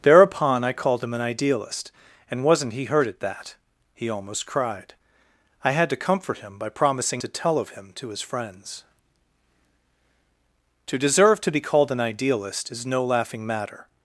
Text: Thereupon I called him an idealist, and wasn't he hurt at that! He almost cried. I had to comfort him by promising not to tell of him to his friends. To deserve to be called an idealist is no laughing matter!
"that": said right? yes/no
yes